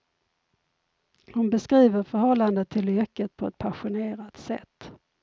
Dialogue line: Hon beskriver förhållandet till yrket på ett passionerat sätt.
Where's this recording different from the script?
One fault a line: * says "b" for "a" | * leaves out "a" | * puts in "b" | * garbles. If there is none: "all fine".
all fine